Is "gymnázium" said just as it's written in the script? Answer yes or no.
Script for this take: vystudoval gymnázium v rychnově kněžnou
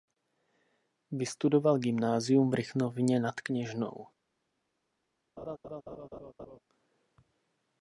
yes